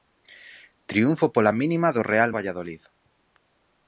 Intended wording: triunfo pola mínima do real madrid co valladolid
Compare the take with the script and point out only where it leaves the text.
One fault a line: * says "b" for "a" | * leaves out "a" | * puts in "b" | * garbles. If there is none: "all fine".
* leaves out "madrid co"